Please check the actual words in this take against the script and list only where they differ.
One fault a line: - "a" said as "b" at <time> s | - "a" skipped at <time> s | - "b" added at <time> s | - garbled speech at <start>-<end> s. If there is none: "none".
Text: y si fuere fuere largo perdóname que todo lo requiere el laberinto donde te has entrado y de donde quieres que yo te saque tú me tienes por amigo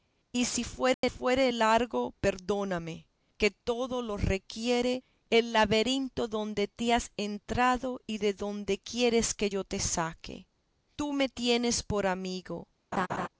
none